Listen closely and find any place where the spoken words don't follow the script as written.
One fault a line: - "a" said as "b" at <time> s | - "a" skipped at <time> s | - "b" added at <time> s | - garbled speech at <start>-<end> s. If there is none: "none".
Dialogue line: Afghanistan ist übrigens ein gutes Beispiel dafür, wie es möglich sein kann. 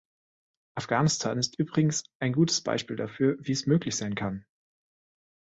none